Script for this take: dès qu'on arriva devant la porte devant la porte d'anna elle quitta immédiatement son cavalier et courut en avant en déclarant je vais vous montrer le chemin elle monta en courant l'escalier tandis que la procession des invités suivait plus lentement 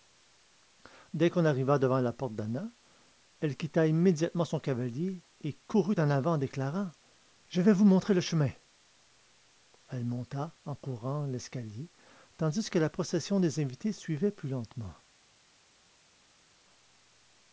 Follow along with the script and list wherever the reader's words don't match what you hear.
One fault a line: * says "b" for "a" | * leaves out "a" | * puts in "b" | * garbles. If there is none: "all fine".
* leaves out "devant la porte"